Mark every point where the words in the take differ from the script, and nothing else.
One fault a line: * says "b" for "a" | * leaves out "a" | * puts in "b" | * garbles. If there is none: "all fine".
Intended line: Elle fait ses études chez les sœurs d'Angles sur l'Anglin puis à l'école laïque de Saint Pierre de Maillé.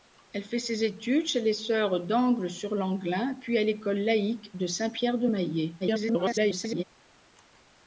* garbles